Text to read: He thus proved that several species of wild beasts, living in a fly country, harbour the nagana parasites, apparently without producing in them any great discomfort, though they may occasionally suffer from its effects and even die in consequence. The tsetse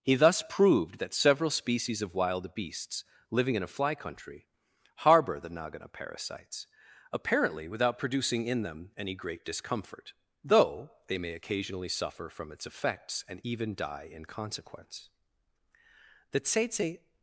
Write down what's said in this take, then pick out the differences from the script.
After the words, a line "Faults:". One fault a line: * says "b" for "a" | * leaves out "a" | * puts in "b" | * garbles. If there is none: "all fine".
He thus proved that several species of wild beasts, living in a fly country, harbour the nagana parasites, apparently without producing in them any great discomfort, though they may occasionally suffer from its effects and even die in consequence. The tsetse
Faults:
all fine